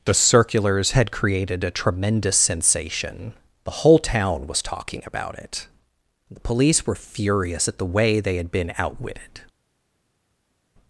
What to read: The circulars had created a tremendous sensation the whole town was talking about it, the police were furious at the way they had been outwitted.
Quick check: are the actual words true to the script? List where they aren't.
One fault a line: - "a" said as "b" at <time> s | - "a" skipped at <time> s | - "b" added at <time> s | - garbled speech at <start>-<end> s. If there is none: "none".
none